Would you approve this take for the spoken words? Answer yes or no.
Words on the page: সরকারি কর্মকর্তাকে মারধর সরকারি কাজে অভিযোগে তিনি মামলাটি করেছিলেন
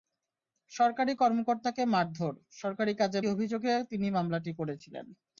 yes